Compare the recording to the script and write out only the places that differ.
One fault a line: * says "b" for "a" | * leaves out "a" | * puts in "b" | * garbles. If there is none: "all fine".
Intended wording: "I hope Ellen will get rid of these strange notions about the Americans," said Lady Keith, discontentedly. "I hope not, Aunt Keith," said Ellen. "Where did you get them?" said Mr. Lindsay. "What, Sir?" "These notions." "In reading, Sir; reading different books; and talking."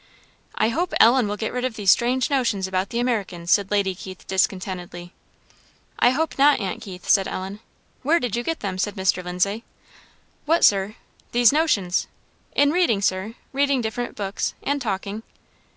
all fine